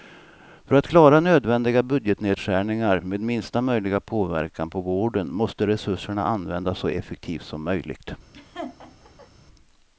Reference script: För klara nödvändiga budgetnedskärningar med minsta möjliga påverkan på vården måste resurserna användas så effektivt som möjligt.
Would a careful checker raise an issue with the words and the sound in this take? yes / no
yes